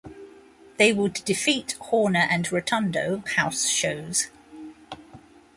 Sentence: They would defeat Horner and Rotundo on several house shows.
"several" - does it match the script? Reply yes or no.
no